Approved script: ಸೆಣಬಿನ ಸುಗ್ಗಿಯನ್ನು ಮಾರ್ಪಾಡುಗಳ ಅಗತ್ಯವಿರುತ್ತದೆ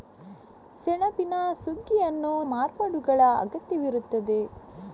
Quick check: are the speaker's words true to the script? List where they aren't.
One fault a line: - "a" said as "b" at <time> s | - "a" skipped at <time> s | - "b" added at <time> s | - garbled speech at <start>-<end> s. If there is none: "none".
none